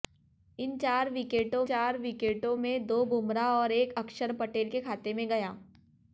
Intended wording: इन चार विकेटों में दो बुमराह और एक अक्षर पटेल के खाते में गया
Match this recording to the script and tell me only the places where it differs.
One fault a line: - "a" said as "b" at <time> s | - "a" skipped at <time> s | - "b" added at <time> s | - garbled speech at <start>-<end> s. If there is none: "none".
- "चार विकेटों" added at 1.6 s